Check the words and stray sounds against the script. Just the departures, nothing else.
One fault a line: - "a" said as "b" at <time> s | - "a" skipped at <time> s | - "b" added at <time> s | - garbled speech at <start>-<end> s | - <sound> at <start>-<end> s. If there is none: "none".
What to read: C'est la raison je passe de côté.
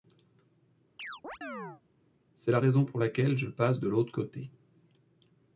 - chirp at 1.0-1.8 s
- "pour laquelle" added at 2.8 s
- "l'autre" added at 3.9 s